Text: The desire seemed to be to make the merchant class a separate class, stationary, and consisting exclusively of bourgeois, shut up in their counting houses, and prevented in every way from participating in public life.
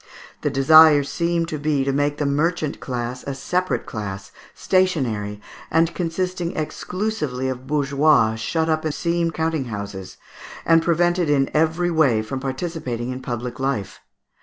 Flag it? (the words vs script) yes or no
yes